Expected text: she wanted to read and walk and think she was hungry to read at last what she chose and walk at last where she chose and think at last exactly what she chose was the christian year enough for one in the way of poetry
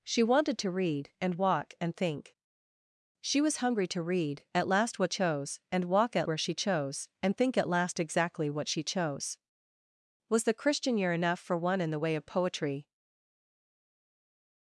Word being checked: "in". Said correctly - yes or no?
yes